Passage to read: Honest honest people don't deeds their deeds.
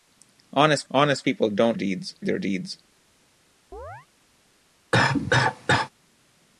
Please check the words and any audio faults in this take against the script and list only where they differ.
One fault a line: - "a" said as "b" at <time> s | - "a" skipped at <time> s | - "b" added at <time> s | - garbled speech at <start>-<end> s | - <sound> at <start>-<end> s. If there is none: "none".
- chirp at 3.7-4.1 s
- cough at 4.9-5.9 s